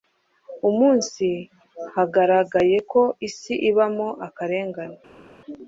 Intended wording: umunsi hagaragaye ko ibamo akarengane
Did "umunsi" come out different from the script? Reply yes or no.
no